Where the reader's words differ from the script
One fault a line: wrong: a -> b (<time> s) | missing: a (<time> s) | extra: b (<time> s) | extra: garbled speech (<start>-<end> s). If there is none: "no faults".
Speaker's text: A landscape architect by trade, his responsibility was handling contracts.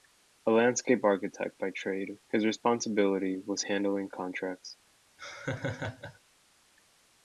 no faults